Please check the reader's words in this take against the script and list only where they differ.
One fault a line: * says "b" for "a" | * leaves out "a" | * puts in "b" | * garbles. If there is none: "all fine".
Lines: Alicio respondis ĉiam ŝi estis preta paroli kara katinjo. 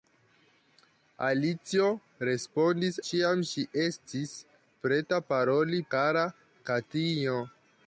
all fine